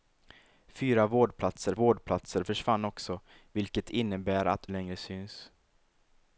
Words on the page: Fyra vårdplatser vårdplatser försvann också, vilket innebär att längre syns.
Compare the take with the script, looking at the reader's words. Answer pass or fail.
pass